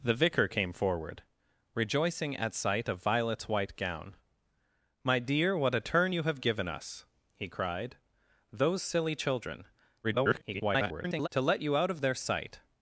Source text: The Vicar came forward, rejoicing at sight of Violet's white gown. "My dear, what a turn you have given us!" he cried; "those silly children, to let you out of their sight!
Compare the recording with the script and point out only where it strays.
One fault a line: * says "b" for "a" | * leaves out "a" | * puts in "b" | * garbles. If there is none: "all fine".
* garbles